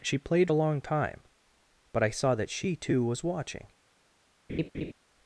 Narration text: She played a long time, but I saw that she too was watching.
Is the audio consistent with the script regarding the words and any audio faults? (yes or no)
no